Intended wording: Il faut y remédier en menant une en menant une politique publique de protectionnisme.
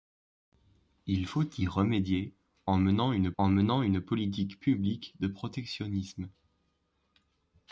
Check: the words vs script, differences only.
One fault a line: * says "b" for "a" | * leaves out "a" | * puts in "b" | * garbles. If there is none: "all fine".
all fine